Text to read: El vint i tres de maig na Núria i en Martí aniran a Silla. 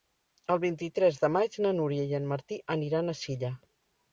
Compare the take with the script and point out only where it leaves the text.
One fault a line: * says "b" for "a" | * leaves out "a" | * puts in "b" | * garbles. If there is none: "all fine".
all fine